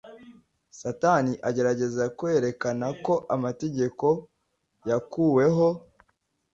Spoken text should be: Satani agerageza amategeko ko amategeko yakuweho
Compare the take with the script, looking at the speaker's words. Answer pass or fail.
fail